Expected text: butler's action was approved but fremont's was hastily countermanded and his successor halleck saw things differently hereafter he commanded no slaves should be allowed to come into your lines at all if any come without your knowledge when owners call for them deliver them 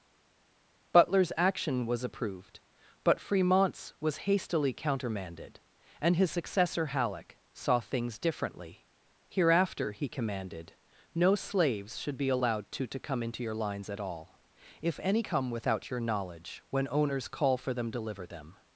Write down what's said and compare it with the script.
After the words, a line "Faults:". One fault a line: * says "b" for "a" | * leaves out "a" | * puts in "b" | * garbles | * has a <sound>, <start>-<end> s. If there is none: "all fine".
butler's action was approved but fremont's was hastily countermanded and his successor halleck saw things differently hereafter he commanded no slaves should be allowed to to come into your lines at all if any come without your knowledge when owners call for them deliver them
Faults:
* puts in "to"